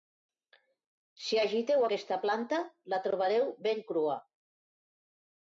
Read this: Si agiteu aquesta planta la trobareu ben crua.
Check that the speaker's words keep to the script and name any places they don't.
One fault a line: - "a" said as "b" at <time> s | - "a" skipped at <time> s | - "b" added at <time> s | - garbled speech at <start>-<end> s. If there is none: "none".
none